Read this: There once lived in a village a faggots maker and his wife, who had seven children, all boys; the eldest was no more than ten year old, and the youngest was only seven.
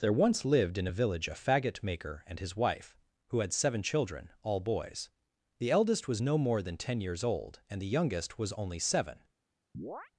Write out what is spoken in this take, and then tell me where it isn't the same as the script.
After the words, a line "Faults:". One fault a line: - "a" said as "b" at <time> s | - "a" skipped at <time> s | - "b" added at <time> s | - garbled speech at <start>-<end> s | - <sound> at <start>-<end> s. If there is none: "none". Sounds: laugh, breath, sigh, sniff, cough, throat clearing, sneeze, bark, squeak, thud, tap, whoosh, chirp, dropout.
There once lived in a village a faggot maker and his wife, who had seven children, all boys; the eldest was no more than ten years old, and the youngest was only seven.
Faults:
- "faggots" said as "faggot" at 1.3 s
- "year" said as "years" at 7.0 s
- chirp at 9.7-10.1 s